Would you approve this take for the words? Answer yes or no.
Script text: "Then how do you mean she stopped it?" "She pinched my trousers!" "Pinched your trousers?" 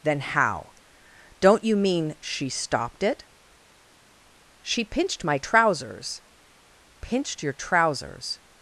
no